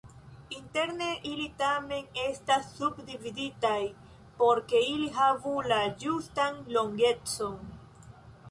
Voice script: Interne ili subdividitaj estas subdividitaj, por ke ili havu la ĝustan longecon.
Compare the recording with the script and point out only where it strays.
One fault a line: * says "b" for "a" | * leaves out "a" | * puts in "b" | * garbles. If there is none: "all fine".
* says "tamen" for "subdividitaj"